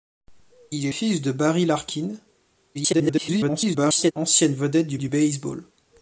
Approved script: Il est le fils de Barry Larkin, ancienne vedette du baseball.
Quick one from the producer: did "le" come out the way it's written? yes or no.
no